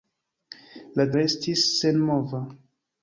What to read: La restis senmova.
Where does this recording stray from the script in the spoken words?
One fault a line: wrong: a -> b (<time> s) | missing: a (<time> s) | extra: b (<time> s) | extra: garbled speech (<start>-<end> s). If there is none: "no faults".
no faults